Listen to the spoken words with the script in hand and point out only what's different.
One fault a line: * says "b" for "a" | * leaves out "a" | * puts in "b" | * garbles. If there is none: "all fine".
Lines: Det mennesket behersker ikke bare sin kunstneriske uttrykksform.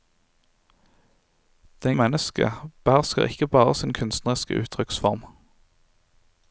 all fine